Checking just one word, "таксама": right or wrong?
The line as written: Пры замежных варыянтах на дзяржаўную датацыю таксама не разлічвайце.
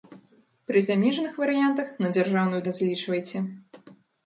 wrong